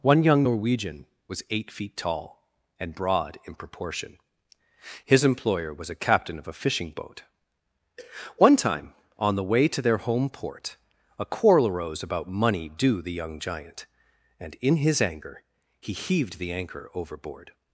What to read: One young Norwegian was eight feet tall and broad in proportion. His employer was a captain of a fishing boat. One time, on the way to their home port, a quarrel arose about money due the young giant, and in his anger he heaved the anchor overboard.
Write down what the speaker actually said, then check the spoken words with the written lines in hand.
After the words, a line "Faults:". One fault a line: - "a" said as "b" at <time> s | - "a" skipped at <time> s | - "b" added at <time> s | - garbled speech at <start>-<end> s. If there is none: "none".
One young Norwegian was eight feet tall and broad in proportion. His employer was a captain of a fishing boat. One time, on the way to their home port, a quarrel arose about money due the young giant, and in his anger he heaved the anchor overboard.
Faults:
none